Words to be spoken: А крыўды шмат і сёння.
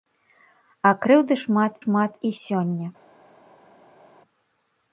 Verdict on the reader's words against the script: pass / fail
fail